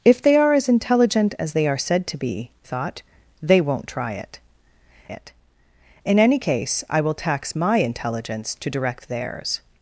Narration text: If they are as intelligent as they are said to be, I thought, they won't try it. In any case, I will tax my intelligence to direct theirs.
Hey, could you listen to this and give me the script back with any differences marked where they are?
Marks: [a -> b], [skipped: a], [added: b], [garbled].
If they are as intelligent as they are said to be, [skipped: I] thought, they won't try it. [added: it] In any case, I will tax my intelligence to direct theirs.